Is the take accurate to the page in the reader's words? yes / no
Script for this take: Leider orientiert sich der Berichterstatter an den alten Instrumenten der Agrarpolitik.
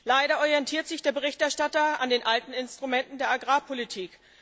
yes